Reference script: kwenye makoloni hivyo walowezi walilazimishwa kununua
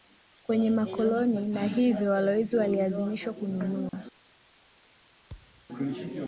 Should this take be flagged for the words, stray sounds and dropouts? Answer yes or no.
yes